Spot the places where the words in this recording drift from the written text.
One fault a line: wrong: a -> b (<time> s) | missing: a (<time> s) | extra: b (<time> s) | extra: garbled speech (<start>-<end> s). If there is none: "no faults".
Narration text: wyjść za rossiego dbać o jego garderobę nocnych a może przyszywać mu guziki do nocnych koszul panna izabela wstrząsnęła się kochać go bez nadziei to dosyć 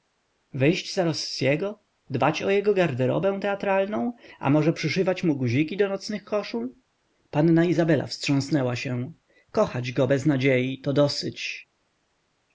wrong: nocnych -> teatralną (3.4 s)